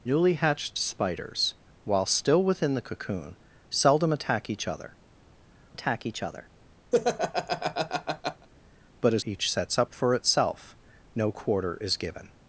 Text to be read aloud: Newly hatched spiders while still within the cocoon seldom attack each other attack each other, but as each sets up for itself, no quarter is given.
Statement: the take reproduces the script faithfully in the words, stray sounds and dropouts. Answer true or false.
false